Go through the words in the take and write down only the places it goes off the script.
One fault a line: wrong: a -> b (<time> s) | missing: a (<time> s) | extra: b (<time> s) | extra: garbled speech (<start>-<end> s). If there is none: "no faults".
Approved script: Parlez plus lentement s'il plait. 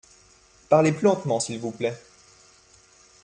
extra: vous (1.6 s)